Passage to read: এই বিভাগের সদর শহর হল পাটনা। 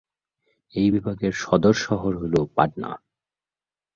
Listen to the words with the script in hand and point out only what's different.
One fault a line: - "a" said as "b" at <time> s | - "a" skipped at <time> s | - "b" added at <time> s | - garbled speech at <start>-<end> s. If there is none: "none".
none